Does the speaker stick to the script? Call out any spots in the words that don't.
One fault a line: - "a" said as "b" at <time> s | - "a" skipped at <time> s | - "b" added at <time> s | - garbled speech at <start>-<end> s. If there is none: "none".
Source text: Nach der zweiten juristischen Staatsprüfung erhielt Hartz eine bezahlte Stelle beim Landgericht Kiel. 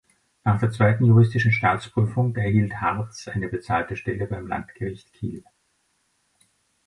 none